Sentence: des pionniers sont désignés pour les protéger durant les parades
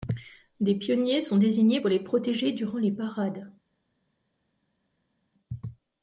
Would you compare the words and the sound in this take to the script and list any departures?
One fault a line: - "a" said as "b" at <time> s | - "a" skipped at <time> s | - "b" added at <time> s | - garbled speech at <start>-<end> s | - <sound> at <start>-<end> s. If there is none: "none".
none